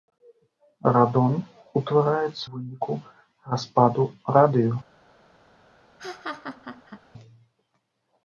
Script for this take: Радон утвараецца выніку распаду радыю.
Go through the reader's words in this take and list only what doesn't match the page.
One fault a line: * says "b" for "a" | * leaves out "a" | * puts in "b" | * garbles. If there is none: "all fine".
all fine